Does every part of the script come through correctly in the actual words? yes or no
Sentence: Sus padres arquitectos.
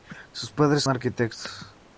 yes